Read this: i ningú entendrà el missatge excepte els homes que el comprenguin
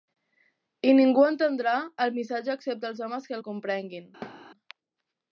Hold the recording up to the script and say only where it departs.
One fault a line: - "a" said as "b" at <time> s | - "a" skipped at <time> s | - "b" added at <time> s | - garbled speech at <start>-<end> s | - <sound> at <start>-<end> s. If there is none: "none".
- thud at 4.2-4.5 s